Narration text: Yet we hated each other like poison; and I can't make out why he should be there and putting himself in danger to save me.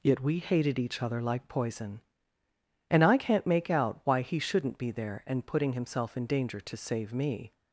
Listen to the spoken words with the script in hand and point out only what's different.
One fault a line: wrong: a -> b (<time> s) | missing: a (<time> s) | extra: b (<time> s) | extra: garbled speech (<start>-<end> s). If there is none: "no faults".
wrong: should -> shouldn't (4.4 s)